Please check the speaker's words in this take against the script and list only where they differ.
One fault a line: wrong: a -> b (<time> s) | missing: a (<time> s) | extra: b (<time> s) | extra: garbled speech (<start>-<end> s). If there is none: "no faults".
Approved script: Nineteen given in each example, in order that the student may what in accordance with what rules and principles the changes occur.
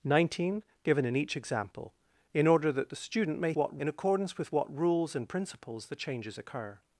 no faults